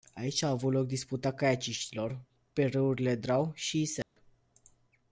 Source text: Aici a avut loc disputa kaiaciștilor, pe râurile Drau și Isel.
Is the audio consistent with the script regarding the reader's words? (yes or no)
yes